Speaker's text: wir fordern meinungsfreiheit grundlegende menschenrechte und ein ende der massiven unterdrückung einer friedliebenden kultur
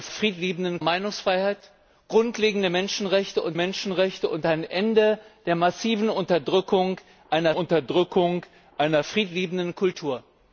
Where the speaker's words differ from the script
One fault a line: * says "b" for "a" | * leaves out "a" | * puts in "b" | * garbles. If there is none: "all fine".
* says "friedliebenden" for "fordern"
* puts in "menschenrechte und"
* puts in "unterdrückung einer"